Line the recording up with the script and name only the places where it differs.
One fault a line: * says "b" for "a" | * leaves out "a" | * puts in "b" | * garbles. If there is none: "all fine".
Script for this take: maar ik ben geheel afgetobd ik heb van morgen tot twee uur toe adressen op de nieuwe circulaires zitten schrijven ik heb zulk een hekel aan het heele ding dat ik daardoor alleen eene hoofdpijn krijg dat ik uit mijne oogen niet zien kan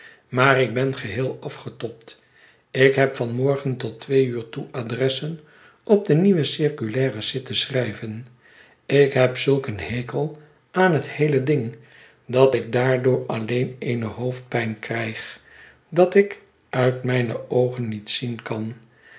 all fine